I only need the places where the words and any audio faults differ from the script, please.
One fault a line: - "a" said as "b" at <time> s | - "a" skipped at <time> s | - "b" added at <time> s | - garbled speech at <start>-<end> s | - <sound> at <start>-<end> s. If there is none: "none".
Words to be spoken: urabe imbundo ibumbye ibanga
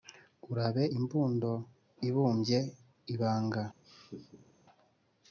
- laugh at 3.8-4.6 s